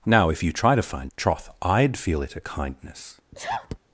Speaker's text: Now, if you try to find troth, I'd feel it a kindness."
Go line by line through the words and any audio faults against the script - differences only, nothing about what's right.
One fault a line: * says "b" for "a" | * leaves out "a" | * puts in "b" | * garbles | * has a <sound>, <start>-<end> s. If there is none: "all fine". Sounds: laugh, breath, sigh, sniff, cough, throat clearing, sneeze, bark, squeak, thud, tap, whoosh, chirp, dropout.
* has a sneeze, 3.3-3.8 s